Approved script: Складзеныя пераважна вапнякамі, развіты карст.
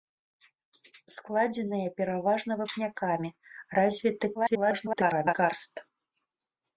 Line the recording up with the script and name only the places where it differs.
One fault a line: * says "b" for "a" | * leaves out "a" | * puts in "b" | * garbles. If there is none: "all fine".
* garbles